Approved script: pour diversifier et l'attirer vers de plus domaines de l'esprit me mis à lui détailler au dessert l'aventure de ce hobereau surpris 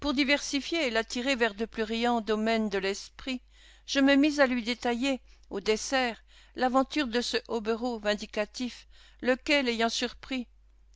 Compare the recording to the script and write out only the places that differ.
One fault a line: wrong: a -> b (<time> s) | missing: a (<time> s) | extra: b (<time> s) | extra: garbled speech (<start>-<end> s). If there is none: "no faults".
extra: riants (1.8 s)
extra: je (3.8 s)
extra: vindicatif lequel ayant (8.0 s)